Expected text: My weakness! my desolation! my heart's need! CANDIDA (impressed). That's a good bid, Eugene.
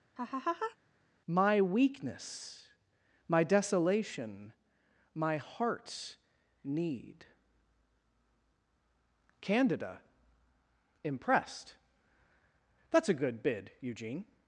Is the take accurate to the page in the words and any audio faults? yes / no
no